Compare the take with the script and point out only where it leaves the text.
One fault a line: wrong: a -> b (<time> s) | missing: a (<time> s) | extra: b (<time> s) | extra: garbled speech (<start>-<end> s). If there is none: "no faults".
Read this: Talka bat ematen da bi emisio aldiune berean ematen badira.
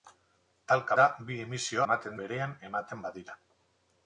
missing: bat ematen (0.9 s)
wrong: aldiune -> ematen (1.8 s)